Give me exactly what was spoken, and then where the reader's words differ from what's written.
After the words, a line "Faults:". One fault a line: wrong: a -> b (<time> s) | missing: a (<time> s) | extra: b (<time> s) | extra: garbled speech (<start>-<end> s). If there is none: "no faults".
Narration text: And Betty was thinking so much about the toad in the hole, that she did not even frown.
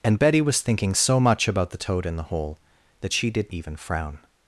And Betty was thinking so much about the toad in the hole, that she did even frown.
Faults:
missing: not (3.5 s)